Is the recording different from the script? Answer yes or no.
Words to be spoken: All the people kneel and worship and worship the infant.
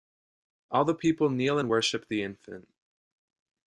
yes